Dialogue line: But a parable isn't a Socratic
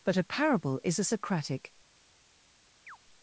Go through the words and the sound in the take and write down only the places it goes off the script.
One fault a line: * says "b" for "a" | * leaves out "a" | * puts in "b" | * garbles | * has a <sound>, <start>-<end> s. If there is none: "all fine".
* says "is" for "isn't"
* has a chirp, 2.9-3.0 s